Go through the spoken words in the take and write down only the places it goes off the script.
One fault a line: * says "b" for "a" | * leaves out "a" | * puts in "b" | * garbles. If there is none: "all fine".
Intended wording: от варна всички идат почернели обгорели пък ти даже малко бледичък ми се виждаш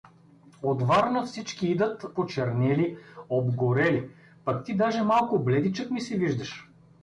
all fine